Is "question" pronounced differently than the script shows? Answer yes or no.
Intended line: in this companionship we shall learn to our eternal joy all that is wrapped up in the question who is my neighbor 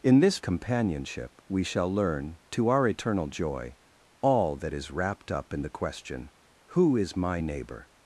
no